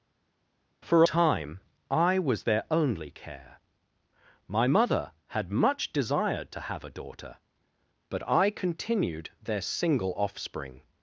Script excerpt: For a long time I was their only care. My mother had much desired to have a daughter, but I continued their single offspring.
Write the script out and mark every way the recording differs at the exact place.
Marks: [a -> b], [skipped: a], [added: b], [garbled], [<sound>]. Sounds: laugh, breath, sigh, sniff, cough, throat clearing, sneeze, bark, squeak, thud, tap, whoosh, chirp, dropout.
For [skipped: a long] time I was their only care. My mother had much desired to have a daughter, but I continued their single offspring.